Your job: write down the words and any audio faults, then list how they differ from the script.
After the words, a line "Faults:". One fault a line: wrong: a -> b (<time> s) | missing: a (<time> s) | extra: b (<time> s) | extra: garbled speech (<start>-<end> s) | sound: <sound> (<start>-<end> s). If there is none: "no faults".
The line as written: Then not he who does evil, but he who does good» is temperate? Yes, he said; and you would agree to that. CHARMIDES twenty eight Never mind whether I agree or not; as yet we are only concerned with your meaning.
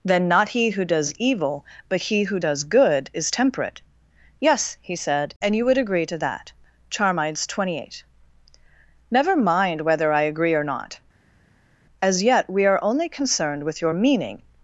Then not he who does evil, but he who does good» is temperate? Yes, he said; and you would agree to that. CHARMIDES twenty eight Never mind whether I agree or not; as yet we are only concerned with your meaning.
Faults:
no faults